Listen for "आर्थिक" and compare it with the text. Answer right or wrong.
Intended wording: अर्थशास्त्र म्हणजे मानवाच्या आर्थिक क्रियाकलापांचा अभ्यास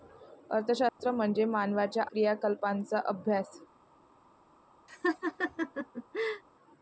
wrong